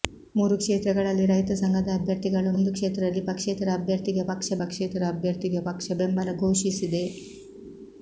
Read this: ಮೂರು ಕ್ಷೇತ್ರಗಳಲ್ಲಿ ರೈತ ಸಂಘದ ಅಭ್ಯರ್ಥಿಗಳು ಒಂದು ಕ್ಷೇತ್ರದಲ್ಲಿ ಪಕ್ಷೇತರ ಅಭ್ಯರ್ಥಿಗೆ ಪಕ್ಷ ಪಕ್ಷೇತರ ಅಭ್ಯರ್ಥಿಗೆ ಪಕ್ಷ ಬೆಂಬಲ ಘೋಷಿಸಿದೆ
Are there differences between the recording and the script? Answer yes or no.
no